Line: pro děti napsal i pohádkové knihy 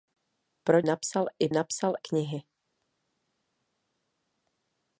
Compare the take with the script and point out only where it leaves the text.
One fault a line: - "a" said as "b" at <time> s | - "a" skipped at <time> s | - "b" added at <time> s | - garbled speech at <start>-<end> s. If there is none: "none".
- "děti" skipped at 0.8 s
- "pohádkové" said as "napsal" at 1.5 s